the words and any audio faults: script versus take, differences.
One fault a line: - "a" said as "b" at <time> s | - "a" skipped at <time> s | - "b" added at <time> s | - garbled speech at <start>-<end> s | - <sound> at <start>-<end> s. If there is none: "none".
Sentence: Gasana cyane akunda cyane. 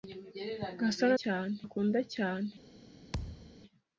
- thud at 3.1-3.5 s